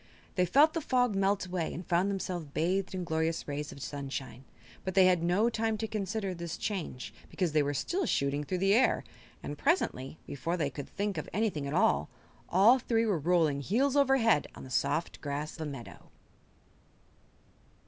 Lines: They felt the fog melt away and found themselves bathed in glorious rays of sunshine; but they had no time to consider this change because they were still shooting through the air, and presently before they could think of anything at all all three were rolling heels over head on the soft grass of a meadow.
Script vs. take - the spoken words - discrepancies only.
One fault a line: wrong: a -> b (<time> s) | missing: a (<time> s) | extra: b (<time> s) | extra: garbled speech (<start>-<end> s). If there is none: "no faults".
missing: of (15.6 s)